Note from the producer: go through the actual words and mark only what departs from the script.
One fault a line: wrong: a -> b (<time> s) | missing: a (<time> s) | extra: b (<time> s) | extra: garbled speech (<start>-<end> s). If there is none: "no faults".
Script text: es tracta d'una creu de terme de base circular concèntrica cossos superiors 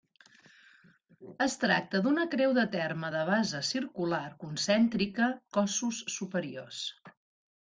no faults